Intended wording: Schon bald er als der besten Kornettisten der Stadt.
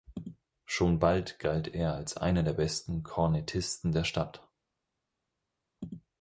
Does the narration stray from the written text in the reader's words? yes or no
yes